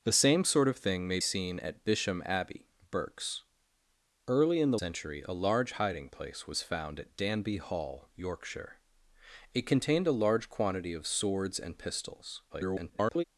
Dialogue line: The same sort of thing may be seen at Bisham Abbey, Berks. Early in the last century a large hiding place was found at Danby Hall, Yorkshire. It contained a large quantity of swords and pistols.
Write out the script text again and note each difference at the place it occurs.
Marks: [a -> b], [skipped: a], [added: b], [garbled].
The same sort of thing may [skipped: be] seen at Bisham Abbey, Berks. Early in the [skipped: last] century a large hiding place was found at Danby Hall, Yorkshire. It contained a large quantity of swords and pistols. [garbled]